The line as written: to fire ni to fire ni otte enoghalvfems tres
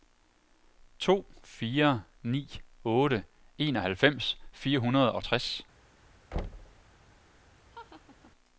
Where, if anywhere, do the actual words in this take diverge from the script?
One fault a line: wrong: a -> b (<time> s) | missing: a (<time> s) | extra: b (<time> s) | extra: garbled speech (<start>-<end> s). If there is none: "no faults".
wrong: to -> otte enoghalvfems (2.9 s)
wrong: ni otte enoghalvfems -> hundrede og (4.8 s)